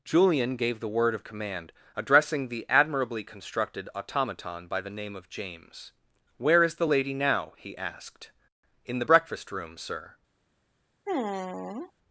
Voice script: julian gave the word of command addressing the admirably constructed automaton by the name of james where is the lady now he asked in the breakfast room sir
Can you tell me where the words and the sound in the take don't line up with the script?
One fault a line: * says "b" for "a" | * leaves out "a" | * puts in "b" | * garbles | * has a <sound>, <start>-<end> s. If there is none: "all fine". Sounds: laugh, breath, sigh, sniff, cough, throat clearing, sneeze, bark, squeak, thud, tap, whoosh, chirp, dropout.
* has a sigh, 11.1-11.9 s